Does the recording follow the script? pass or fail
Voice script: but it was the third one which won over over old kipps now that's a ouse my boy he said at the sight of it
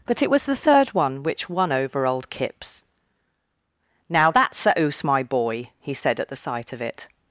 fail